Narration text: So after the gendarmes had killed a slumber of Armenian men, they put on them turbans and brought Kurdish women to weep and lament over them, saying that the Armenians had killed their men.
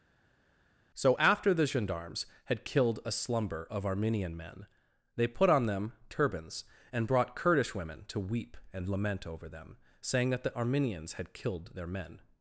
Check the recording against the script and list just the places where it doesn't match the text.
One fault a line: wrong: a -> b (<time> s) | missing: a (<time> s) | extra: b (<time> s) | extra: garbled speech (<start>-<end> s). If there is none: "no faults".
no faults